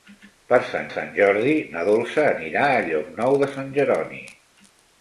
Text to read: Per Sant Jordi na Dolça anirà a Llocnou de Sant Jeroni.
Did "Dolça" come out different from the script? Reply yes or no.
no